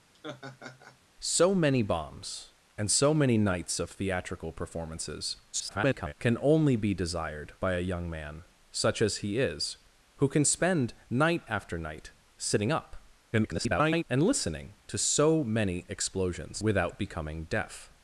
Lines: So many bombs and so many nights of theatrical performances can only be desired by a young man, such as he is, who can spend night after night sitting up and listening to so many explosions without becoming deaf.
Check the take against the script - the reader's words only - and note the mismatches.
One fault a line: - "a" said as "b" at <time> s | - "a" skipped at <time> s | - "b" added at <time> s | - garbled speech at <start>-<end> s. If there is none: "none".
- garbled speech at 5.5-6.1 s
- garbled speech at 13.3-14.0 s